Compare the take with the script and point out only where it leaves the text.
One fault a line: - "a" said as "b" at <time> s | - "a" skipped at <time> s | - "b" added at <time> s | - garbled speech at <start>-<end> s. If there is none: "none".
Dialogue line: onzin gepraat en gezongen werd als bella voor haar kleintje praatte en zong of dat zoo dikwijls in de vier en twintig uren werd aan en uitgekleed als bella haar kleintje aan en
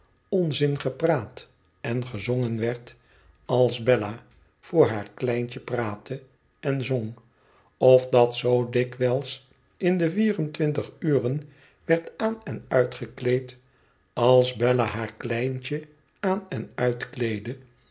none